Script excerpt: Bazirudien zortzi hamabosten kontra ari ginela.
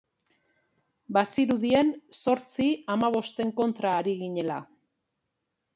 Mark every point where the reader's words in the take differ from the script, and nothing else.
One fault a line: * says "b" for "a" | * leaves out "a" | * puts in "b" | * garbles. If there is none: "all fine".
all fine